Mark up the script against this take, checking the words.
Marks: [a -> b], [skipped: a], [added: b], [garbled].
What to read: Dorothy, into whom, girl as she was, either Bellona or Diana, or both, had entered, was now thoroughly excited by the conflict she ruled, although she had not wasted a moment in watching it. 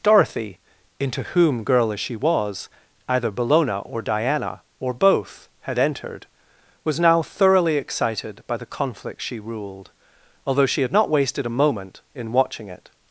Dorothy, into whom, girl as she was, either Bellona or Diana, or both, had entered, was now thoroughly excited by the conflict she ruled, although she had not wasted a moment in watching it.